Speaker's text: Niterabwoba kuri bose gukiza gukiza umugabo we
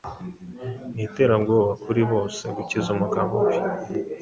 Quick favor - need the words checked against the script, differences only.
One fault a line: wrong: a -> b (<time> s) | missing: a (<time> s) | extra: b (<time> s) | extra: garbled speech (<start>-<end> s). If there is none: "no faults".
missing: gukiza (2.9 s)